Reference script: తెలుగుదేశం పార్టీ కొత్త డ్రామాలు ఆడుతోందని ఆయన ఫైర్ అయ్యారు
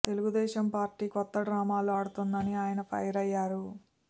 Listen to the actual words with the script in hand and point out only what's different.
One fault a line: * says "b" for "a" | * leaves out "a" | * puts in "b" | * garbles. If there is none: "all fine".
all fine